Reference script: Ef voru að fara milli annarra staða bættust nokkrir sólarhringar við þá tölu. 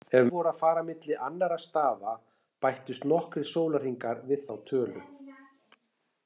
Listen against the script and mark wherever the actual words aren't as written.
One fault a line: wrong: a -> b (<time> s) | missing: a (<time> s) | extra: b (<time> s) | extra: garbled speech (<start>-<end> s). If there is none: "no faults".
no faults